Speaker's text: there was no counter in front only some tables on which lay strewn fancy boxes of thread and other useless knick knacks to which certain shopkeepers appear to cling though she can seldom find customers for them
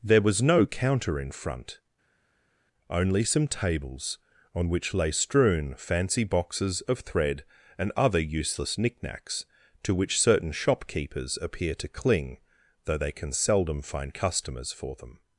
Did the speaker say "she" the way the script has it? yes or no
no